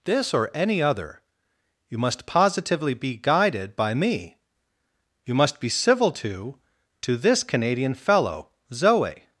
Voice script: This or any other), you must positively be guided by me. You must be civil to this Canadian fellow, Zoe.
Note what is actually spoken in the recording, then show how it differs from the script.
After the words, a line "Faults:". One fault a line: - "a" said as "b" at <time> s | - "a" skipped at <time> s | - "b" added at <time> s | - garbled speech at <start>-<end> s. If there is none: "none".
This or any other), you must positively be guided by me. You must be civil to to this Canadian fellow, Zoe.
Faults:
- "to" added at 7.0 s